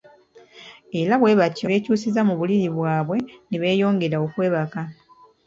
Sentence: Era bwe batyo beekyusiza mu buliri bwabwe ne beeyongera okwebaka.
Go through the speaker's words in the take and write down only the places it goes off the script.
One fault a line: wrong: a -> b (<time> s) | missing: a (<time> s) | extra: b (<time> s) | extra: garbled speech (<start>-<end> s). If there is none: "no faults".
no faults